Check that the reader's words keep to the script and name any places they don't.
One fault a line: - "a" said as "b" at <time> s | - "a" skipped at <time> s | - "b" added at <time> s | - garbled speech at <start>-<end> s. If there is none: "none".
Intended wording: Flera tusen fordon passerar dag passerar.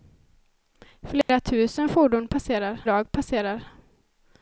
none